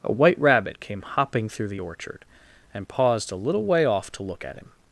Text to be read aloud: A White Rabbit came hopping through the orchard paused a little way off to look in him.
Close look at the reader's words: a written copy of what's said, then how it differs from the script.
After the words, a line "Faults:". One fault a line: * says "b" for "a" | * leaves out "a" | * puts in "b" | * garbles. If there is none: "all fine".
A White Rabbit came hopping through the orchard and paused a little way off to look at him.
Faults:
* puts in "and"
* says "at" for "in"